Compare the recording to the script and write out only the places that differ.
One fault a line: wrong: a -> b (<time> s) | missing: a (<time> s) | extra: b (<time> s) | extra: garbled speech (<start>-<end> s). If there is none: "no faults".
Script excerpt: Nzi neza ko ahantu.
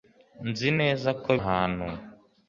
no faults